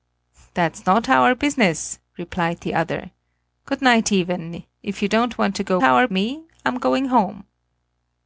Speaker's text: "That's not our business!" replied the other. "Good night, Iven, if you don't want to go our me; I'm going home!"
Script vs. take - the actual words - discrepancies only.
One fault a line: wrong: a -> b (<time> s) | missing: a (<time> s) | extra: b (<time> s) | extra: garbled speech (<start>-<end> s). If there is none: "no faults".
no faults